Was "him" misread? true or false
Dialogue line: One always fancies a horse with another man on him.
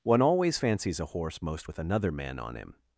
false